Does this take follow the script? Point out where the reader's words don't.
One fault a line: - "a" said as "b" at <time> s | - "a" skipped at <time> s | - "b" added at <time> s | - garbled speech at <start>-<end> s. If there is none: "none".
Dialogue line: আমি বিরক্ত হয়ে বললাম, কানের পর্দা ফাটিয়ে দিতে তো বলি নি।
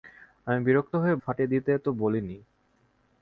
- "বললাম কানের পর্দা" skipped at 1.2 s